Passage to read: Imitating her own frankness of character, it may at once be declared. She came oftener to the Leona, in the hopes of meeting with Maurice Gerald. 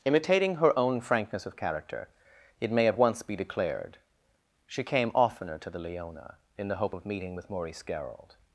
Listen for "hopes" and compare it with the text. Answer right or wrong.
wrong